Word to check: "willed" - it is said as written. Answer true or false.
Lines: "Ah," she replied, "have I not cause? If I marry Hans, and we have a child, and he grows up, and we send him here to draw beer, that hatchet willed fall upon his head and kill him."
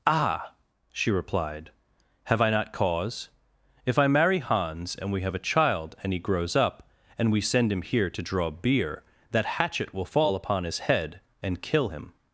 false